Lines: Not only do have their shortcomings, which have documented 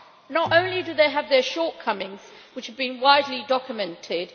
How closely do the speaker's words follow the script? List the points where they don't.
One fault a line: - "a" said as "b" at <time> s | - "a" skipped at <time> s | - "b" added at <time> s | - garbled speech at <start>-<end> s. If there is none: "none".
- "they" added at 0.9 s
- "been widely" added at 2.8 s